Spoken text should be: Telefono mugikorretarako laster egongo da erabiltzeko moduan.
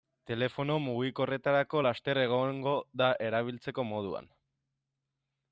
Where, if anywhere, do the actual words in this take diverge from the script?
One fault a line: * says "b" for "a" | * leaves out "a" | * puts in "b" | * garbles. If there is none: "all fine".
all fine